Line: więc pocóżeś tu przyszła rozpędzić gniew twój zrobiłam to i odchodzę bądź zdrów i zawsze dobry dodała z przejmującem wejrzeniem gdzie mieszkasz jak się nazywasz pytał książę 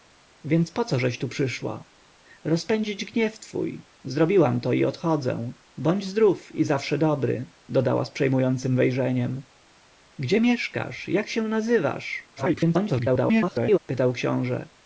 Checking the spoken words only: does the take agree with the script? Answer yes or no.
no